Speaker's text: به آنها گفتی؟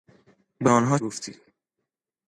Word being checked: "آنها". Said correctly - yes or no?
yes